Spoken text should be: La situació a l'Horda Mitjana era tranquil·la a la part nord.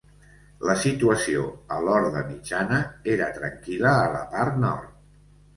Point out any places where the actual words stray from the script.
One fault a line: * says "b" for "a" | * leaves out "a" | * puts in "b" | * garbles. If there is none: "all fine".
all fine